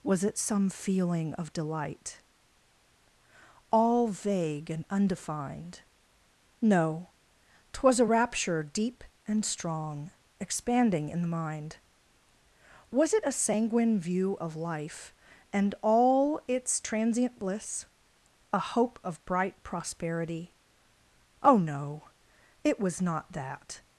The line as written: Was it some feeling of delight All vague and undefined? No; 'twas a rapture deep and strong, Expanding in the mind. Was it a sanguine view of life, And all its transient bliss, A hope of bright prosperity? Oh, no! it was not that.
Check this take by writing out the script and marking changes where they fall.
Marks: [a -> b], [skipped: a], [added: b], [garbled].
Was it some feeling of delight All vague and undefined? No; 'twas a rapture deep and strong, Expanding in the mind. Was it a sanguine view of life, And all its transient bliss, A hope of bright prosperity? Oh, no! it was not that.